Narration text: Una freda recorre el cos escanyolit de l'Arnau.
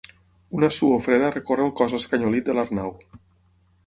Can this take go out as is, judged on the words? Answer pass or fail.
fail